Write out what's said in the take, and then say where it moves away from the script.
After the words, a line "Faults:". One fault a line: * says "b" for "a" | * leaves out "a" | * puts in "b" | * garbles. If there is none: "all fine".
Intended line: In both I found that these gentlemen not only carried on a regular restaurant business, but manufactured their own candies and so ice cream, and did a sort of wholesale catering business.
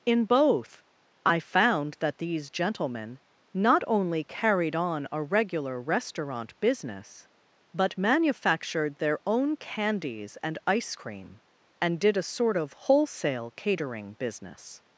In both I found that these gentlemen not only carried on a regular restaurant business, but manufactured their own candies and ice cream, and did a sort of wholesale catering business.
Faults:
* leaves out "so"